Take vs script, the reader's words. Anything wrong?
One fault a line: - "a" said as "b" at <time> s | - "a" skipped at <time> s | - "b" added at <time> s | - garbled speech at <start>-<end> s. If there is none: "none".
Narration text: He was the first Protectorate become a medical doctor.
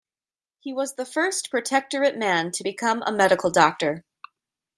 - "man to" added at 2.2 s